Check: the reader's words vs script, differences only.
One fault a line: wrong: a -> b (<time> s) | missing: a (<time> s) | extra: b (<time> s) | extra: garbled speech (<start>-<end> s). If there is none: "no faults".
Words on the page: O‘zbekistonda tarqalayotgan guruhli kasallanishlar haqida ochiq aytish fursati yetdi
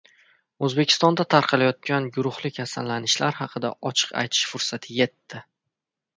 no faults